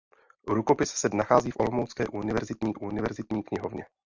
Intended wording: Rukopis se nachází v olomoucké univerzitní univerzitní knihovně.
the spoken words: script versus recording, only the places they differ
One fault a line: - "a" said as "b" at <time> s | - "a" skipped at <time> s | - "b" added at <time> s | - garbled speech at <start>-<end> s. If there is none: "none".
none